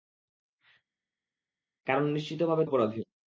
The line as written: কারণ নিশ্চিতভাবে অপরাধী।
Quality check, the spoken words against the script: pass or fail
pass